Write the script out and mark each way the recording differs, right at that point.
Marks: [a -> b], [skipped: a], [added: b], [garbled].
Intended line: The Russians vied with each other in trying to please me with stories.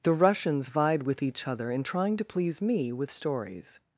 The Russians vied with each other in trying to please me with stories.